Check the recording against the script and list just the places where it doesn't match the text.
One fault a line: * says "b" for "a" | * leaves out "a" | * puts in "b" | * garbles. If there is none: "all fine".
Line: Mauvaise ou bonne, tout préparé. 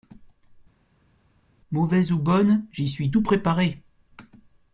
* puts in "j'y suis"